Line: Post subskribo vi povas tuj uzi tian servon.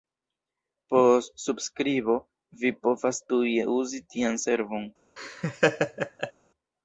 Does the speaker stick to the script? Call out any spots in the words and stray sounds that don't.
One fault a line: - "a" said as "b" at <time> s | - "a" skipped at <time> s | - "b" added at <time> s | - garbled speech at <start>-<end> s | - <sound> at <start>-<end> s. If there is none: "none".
- laugh at 5.2-6.3 s